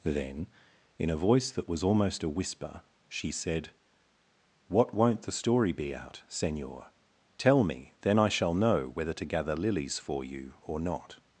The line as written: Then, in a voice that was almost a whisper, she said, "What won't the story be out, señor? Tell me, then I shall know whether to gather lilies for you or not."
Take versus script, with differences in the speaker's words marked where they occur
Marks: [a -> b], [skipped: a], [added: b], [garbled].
Then, in a voice that was almost a whisper, she said, "What won't the story be out, señor? Tell me, then I shall know whether to gather lilies for you or not."